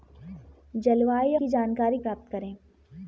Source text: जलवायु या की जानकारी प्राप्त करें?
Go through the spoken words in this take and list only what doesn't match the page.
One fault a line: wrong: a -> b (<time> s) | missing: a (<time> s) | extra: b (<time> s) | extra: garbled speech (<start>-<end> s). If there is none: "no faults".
no faults